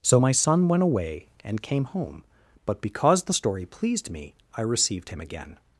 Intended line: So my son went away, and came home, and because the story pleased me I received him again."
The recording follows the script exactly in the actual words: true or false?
false